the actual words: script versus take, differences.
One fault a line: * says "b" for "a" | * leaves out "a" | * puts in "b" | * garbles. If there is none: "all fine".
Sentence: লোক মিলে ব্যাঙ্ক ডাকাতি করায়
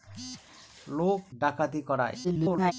* leaves out "মিলে ব্যাঙ্ক"
* garbles